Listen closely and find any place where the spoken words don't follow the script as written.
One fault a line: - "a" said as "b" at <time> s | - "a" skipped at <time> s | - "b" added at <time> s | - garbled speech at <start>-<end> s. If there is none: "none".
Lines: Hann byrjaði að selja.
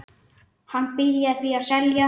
- "því" added at 1.4 s